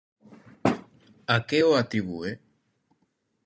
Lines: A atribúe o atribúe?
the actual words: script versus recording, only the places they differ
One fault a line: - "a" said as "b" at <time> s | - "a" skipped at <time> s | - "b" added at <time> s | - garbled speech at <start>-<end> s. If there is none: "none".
- "atribúe" said as "que" at 1.5 s